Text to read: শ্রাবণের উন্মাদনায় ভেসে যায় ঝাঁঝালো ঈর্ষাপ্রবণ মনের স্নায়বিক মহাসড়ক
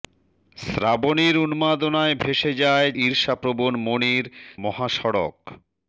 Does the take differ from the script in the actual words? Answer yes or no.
yes